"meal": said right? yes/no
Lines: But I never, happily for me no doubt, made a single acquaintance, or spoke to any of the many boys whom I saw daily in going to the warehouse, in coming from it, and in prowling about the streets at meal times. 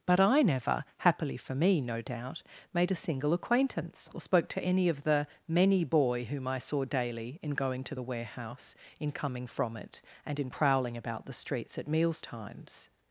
no